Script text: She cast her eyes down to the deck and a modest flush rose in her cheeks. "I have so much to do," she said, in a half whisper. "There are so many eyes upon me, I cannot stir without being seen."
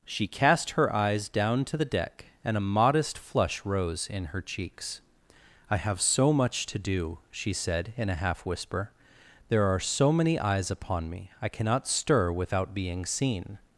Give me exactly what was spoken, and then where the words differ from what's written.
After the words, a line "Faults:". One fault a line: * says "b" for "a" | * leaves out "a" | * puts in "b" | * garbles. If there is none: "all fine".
She cast her eyes down to the deck and a modest flush rose in her cheeks. "I have so much to do," she said, in a half whisper. "There are so many eyes upon me, I cannot stir without being seen."
Faults:
all fine